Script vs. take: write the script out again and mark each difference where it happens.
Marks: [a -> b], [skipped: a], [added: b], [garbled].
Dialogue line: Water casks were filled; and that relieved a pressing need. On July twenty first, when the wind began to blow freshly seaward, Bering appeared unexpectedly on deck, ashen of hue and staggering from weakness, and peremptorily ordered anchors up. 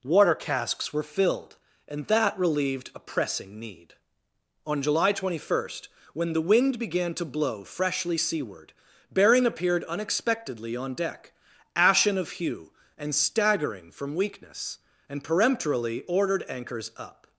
Water casks were filled; and that relieved a pressing need. On July twenty first, when the wind began to blow freshly seaward, Bering appeared unexpectedly on deck, ashen of hue and staggering from weakness, and peremptorily ordered anchors up.